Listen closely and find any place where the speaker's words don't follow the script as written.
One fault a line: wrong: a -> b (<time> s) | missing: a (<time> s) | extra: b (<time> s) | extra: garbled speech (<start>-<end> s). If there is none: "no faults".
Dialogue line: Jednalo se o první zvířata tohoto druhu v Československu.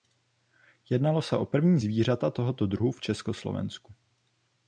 no faults